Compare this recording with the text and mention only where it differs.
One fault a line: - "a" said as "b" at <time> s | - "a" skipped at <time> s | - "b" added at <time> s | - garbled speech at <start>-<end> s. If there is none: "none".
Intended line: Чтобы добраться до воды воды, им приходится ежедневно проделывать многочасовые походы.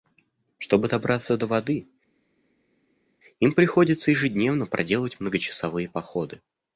- "воды" skipped at 1.9 s